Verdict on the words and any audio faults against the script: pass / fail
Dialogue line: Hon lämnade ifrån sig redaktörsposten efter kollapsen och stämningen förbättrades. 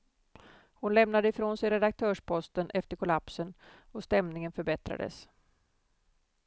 pass